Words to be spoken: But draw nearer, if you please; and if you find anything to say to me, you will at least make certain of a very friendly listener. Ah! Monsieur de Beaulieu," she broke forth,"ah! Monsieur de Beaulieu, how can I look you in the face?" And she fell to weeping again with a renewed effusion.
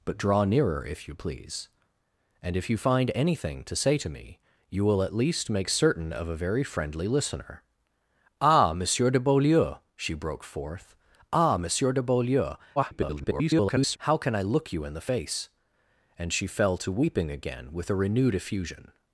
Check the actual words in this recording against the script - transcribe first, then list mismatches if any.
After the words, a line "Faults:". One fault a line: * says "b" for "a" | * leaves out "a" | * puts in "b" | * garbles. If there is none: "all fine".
But draw nearer, if you please; and if you find anything to say to me, you will at least make certain of a very friendly listener. Ah! Monsieur de Beaulieu," she broke forth,"ah! Monsieur de Beaulieu, [garbled] how can I look you in the face?" And she fell to weeping again with a renewed effusion.
Faults:
* garbles